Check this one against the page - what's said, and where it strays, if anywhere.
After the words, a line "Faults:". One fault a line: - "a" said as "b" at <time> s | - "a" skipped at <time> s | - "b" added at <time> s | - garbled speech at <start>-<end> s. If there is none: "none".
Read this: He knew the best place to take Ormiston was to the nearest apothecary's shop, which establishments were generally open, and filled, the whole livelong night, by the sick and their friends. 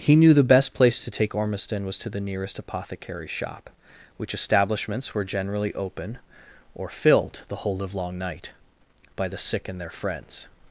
He knew the best place to take Ormiston was to the nearest apothecary's shop, which establishments were generally open, or filled, the whole livelong night, by the sick and their friends.
Faults:
- "and" said as "or" at 6.7 s